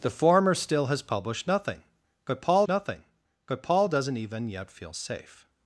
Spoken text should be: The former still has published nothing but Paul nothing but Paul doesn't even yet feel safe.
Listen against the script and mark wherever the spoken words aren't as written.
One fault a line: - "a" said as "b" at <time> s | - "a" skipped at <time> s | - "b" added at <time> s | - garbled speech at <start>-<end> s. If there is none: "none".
none